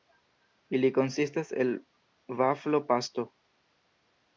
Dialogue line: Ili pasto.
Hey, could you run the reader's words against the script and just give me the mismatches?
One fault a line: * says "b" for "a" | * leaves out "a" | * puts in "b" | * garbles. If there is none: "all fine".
* puts in "konsistas el vaflo"